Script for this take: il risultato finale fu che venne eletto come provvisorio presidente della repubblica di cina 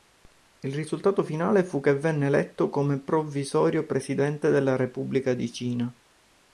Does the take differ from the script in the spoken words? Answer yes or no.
no